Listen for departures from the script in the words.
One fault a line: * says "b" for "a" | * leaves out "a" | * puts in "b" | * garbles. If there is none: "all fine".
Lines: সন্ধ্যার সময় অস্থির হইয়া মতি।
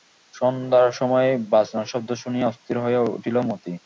* puts in "বাজনার শব্দ শুনিয়া"
* puts in "উঠিল"